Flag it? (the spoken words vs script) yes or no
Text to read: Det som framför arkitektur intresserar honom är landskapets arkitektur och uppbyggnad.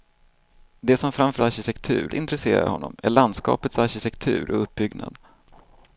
no